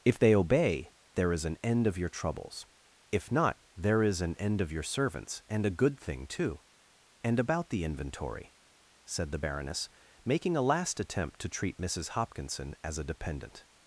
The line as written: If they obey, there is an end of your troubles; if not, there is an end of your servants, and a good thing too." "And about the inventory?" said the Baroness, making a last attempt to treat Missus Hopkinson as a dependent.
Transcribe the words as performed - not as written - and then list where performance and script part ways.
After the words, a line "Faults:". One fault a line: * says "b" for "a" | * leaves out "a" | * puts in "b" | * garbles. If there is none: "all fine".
If they obey, there is an end of your troubles; if not, there is an end of your servants, and a good thing too." "And about the inventory?" said the Baroness, making a last attempt to treat Missus Hopkinson as a dependent.
Faults:
all fine